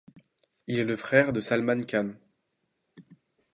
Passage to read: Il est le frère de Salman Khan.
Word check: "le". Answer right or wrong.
right